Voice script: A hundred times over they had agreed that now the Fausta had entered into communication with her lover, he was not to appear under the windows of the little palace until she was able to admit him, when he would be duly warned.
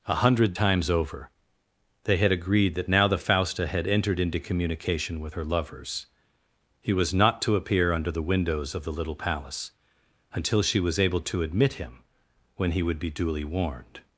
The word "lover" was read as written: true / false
false